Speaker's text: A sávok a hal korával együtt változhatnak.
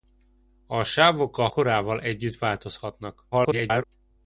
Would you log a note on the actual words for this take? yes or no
yes